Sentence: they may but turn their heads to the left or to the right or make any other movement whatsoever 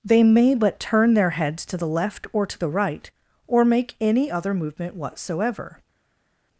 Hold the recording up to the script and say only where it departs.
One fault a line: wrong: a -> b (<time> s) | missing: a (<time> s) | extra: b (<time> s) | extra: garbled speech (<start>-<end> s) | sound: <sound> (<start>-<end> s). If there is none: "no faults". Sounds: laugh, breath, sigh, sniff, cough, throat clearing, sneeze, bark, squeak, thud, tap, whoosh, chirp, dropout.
no faults